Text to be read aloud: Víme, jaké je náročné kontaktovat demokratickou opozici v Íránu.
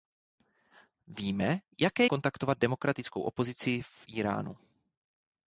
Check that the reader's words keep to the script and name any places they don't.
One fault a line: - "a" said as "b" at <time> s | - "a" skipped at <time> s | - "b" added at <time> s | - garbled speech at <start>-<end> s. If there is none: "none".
- "je náročné" skipped at 2.0 s